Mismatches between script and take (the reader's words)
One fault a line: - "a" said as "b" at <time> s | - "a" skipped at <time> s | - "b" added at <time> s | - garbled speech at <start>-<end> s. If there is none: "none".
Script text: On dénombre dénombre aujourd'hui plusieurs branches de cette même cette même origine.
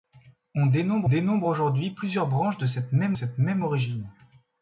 none